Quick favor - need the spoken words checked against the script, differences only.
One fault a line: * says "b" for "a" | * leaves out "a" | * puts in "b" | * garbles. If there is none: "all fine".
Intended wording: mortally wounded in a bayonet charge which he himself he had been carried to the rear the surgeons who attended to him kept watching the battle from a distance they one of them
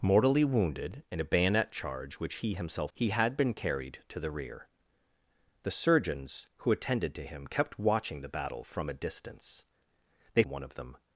all fine